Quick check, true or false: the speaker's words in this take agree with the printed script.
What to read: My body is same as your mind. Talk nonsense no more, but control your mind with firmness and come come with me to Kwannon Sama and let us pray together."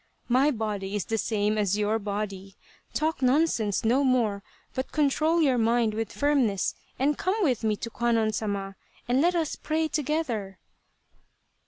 false